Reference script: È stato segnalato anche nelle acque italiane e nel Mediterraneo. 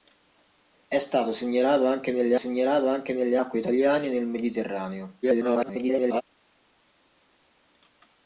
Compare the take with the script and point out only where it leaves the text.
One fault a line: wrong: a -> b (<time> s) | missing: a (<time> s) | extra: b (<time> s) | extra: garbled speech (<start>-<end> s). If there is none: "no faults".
extra: segnalato anche nelle (2.3 s)
extra: garbled speech (5.2-6.2 s)